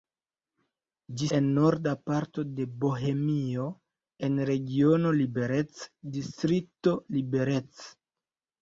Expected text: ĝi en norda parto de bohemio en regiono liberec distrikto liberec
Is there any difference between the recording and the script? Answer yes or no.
no